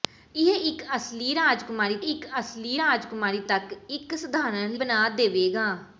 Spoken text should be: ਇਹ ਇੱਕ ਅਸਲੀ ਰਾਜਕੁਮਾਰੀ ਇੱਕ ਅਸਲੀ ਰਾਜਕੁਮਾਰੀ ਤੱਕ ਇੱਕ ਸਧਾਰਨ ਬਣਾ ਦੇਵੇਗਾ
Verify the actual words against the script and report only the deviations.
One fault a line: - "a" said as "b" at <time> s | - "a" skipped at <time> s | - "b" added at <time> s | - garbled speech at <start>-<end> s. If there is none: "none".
none